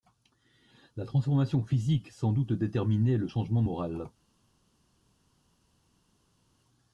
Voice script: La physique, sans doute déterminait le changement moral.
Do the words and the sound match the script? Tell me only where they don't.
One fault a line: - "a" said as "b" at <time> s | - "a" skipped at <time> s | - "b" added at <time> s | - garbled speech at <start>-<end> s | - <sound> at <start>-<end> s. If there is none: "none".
- "transformation" added at 1.1 s